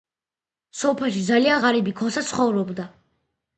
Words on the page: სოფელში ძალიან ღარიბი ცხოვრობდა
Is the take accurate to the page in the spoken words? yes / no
no